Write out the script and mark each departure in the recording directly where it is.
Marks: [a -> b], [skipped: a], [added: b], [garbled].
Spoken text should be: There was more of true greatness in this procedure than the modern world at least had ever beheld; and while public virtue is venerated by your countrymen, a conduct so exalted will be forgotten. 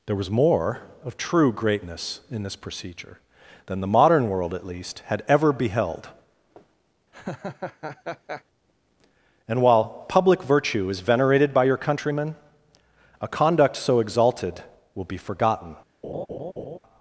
There was more of true greatness in this procedure than the modern world at least had ever beheld; and while public virtue is venerated by your countrymen, a conduct so exalted will be forgotten.